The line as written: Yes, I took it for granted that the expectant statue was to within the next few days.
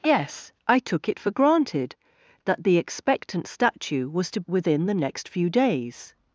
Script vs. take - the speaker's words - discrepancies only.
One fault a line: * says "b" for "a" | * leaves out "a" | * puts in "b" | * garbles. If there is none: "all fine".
all fine